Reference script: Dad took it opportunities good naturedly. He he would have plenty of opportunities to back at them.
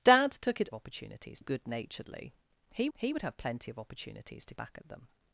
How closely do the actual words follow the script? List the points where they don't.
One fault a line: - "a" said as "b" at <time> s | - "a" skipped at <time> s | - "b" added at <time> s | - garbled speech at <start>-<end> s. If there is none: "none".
none